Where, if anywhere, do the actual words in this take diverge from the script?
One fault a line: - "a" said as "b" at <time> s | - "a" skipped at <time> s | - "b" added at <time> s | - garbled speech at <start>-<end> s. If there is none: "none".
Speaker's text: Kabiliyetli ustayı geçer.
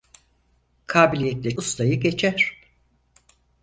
none